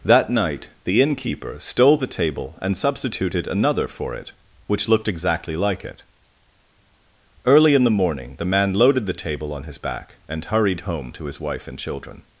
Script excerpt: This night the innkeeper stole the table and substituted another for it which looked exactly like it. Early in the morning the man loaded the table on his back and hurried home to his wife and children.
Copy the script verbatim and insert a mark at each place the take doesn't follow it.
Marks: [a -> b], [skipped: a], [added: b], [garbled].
[This -> That] night the innkeeper stole the table and substituted another for it which looked exactly like it. Early in the morning the man loaded the table on his back and hurried home to his wife and children.